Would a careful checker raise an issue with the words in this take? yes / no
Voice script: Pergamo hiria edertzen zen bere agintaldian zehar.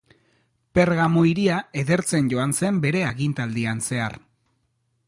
yes